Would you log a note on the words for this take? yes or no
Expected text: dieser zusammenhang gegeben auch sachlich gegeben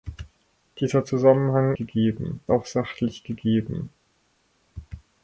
no